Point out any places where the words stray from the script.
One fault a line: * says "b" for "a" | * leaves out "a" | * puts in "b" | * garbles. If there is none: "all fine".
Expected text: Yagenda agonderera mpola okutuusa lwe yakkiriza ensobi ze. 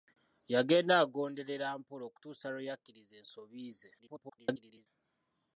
* garbles